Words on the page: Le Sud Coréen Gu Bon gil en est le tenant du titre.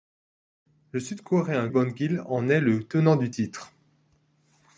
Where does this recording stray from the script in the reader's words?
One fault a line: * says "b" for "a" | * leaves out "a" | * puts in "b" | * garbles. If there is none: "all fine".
* leaves out "Gu"